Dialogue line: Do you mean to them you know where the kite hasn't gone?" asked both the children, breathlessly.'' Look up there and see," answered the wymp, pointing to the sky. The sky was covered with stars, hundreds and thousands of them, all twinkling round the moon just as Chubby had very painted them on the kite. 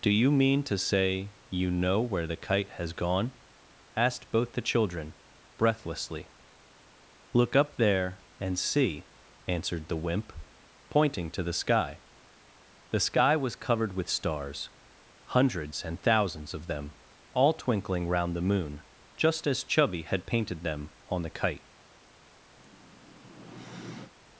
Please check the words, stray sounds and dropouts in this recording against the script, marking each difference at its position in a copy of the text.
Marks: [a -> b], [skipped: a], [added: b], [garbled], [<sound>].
Do you mean to [them -> say] you know where the kite [hasn't -> has] gone?" asked both the children, breathlessly.'' Look up there and see," answered the wymp, pointing to the sky. The sky was covered with stars, hundreds and thousands of them, all twinkling round the moon just as Chubby had [skipped: very] painted them on the kite. [sigh]